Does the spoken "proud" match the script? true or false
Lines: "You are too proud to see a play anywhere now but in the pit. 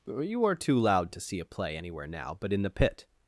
false